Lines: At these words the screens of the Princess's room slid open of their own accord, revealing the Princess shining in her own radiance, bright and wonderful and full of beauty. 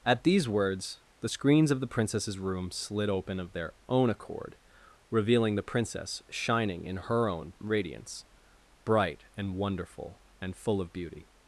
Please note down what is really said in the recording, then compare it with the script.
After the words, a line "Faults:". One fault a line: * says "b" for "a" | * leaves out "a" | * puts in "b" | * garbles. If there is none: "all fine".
At these words the screens of the Princess's room slid open of their own accord, revealing the Princess shining in her own radiance, bright and wonderful and full of beauty.
Faults:
all fine